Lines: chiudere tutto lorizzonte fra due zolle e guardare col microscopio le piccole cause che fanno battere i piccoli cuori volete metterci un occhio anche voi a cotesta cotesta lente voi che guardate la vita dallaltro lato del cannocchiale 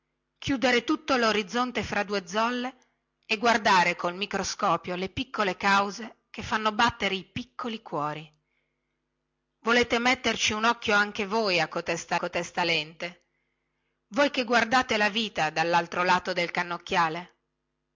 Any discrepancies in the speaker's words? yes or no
no